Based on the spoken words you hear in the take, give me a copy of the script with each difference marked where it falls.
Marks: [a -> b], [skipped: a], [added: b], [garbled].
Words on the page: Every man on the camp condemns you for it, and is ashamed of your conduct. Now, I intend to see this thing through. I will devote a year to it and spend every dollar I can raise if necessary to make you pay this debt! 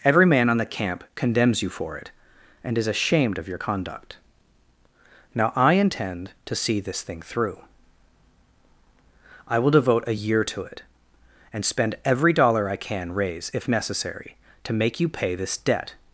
Every man on the camp condemns you for it, and is ashamed of your conduct. Now, I intend to see this thing through. I will devote a year to it and spend every dollar I can raise if necessary to make you pay this debt!